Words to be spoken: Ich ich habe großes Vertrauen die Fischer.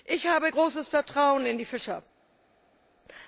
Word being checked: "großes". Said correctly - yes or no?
yes